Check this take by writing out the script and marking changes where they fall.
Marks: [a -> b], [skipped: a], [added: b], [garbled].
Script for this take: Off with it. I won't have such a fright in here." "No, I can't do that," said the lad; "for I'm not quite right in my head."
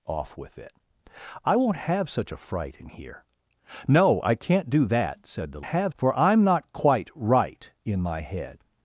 Off with it. I won't have such a fright in here." "No, I can't do that," said the [lad; -> have] "for I'm not quite right in my head."